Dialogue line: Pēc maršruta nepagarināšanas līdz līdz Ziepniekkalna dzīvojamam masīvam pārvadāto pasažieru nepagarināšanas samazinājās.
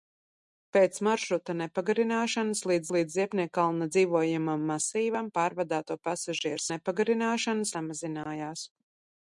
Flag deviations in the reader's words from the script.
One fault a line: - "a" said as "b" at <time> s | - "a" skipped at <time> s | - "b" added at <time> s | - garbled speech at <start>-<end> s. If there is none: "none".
none